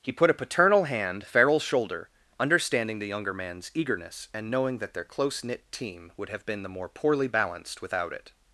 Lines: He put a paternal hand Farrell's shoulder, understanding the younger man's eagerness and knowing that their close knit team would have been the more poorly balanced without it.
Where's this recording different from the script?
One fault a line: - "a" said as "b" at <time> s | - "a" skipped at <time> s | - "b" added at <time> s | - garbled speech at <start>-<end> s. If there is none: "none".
none